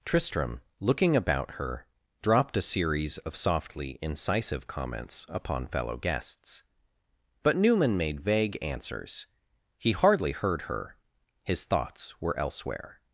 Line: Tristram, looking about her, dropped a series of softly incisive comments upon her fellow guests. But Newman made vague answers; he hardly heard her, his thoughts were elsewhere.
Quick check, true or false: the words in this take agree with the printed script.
false